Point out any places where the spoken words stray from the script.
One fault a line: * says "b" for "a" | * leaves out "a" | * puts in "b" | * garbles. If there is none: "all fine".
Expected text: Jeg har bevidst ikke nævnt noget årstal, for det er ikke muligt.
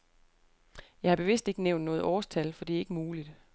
all fine